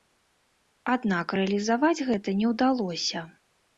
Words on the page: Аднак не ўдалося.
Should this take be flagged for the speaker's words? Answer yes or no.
yes